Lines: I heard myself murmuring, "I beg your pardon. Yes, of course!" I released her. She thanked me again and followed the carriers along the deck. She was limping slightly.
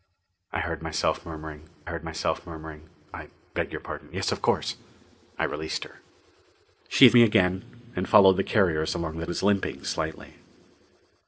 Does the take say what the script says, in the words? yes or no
no